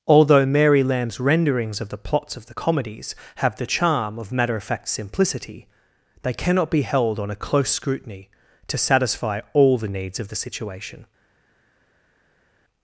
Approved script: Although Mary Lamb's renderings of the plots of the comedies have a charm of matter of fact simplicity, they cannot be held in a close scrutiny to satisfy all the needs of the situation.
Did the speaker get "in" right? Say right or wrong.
wrong